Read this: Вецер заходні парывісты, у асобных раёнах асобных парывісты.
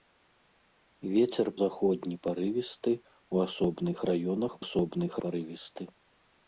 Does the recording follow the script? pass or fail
pass